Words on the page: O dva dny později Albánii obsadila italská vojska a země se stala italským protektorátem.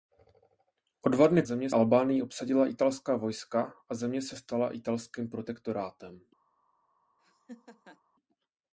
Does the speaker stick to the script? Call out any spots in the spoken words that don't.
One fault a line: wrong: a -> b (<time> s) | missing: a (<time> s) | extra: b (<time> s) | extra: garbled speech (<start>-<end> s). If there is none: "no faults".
wrong: později -> země (1.4 s)